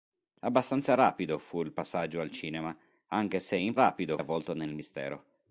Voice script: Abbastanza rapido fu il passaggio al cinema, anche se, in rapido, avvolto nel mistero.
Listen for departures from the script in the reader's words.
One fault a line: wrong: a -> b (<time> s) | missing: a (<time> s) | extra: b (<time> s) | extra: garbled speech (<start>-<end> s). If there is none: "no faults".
no faults